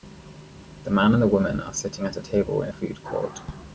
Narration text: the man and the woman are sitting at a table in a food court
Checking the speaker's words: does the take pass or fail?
pass